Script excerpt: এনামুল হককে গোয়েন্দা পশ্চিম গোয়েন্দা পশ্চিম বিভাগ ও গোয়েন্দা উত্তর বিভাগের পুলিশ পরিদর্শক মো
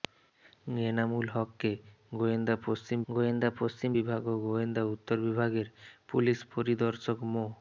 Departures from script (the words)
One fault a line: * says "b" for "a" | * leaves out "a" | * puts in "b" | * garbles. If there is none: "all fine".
all fine